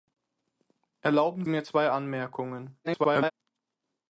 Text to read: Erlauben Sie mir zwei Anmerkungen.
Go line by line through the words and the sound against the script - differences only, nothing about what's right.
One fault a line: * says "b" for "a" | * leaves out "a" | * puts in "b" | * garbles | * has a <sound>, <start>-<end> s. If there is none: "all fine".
* leaves out "Sie"
* garbles